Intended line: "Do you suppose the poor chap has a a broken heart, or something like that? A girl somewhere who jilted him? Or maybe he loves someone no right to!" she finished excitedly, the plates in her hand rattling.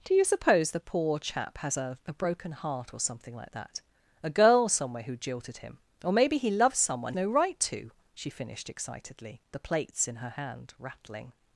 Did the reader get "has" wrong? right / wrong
right